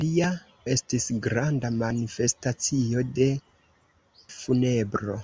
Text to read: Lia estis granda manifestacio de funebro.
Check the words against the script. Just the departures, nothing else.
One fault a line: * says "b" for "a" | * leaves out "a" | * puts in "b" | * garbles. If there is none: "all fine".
all fine